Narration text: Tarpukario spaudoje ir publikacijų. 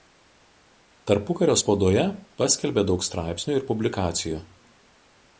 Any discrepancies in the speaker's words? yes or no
yes